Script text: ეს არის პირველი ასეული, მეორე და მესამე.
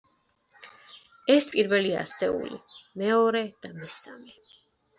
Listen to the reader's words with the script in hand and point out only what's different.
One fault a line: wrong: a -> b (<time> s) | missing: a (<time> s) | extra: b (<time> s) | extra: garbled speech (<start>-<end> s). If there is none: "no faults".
missing: არის (1.5 s)